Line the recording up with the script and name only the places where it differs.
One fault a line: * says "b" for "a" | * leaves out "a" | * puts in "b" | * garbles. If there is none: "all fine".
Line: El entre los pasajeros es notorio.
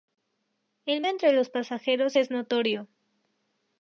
all fine